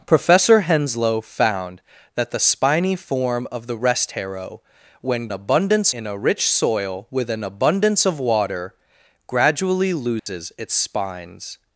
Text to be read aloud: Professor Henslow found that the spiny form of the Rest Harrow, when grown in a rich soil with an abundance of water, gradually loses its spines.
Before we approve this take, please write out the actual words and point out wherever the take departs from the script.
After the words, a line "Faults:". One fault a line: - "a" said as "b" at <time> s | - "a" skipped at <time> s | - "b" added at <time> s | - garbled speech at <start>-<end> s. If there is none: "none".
Professor Henslow found that the spiny form of the Rest Harrow, when abundance in a rich soil with an abundance of water, gradually loses its spines.
Faults:
- "grown" said as "abundance" at 5.3 s